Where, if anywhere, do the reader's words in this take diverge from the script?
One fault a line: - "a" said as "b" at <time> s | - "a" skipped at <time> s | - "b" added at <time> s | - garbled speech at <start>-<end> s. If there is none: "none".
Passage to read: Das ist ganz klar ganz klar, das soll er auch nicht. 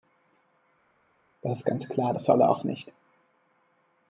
- "ganz klar" skipped at 2.1 s